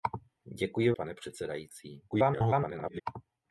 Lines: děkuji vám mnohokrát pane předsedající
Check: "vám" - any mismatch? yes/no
yes